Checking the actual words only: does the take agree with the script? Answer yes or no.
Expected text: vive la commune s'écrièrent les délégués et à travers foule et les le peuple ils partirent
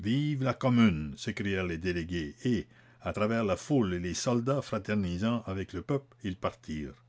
no